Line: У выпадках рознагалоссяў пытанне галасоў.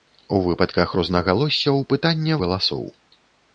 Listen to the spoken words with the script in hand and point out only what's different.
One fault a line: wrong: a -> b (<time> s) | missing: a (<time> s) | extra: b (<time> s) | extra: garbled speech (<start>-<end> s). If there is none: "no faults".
no faults